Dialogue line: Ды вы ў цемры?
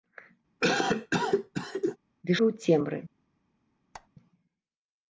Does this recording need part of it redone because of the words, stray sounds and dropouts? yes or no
yes